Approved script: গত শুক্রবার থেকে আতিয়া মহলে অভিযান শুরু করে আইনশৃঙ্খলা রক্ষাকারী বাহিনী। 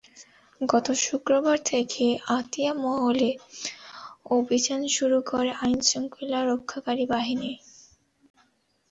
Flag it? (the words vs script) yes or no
no